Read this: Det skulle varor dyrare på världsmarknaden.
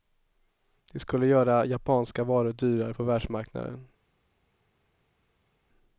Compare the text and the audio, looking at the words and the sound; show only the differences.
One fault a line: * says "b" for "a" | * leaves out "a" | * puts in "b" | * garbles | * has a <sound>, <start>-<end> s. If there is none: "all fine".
* puts in "göra japanska"